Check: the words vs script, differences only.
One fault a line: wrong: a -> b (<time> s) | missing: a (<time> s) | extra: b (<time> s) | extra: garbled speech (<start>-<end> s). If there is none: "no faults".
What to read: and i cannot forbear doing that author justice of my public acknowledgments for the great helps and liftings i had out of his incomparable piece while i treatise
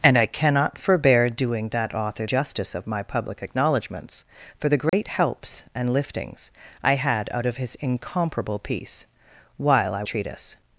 no faults